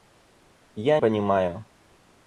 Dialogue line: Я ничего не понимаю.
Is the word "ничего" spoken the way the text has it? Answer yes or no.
no